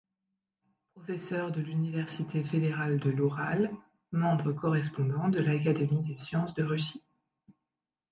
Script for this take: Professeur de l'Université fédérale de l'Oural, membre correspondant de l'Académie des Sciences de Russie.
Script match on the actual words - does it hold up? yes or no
yes